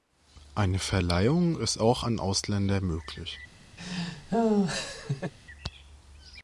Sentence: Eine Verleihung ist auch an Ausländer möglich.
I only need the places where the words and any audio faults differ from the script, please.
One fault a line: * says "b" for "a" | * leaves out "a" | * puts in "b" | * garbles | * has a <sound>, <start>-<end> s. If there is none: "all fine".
* has a laugh, 3.8-5.3 s